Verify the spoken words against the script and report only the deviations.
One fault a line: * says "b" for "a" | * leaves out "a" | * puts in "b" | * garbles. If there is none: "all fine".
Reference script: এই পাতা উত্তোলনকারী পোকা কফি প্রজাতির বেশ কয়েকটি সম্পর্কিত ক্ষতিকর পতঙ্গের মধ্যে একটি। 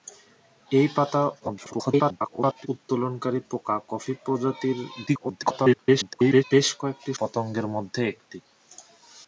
* garbles
* garbles
* leaves out "সম্পর্কিত ক্ষতিকর"